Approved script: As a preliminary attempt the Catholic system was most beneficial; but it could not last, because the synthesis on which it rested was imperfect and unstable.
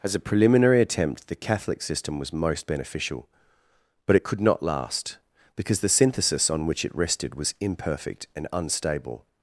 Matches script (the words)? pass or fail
pass